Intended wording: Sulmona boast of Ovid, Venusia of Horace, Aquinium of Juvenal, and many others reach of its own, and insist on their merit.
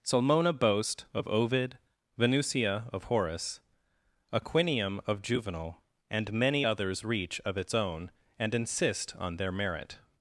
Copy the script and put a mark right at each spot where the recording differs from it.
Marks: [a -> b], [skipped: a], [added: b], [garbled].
Sulmona boast of Ovid, Venusia of Horace, Aquinium of Juvenal, and many others reach of its own, and insist on their merit.